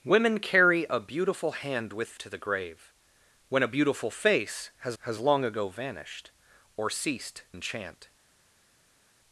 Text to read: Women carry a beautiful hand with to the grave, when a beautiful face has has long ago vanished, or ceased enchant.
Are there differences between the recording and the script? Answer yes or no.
no